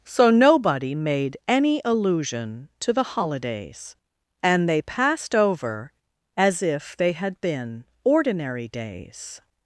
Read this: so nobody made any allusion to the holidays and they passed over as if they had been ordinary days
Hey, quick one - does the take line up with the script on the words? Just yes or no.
yes